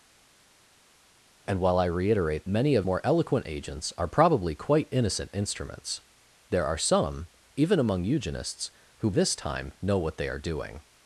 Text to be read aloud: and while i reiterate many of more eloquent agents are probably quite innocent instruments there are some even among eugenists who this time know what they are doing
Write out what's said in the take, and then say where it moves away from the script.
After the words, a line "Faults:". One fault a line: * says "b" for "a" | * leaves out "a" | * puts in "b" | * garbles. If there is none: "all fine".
and while i reiterate many of more eloquent agents are probably quite innocent instruments there are some even among eugenists who this time know what they are doing
Faults:
all fine